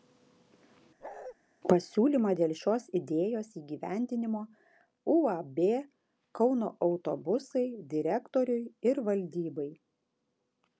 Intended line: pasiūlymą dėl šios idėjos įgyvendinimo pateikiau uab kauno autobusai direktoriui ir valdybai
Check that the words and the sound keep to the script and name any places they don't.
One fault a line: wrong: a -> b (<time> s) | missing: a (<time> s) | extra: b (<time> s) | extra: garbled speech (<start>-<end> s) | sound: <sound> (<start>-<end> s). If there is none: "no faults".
sound: bark (1.0-1.4 s)
missing: pateikiau (4.4 s)